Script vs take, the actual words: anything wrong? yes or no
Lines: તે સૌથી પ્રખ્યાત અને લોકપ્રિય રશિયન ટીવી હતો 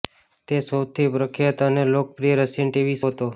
no